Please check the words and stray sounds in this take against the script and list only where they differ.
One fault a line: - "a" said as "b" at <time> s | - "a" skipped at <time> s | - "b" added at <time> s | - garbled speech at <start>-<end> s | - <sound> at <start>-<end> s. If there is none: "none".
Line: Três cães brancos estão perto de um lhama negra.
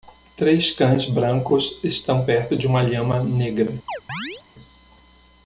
- "um" said as "uma" at 2.7 s
- chirp at 3.9-4.4 s